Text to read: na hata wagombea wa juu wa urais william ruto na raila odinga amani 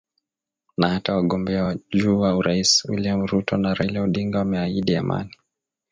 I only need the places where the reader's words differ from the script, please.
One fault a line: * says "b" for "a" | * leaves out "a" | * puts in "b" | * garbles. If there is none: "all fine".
* puts in "wameahidi"